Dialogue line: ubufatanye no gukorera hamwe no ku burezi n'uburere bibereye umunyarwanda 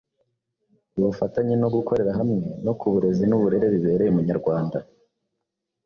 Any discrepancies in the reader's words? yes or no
no